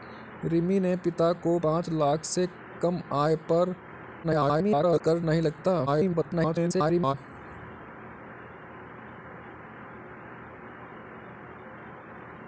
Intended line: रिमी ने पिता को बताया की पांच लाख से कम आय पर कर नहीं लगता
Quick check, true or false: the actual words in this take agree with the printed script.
false